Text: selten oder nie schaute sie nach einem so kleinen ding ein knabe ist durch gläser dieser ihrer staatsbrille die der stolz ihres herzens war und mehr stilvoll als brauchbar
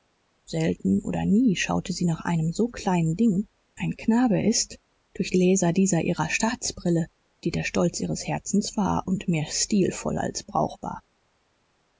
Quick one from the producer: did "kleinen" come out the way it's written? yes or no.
yes